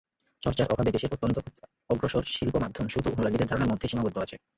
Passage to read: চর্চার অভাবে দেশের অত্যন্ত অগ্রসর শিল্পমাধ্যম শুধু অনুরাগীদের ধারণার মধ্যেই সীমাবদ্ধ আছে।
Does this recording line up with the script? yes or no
yes